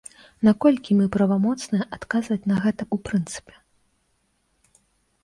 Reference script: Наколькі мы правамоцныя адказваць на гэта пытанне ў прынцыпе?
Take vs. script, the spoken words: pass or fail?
fail